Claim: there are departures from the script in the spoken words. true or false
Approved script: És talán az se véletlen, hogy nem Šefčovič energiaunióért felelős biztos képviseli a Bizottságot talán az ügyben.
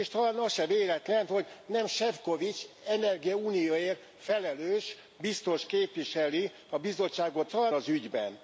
false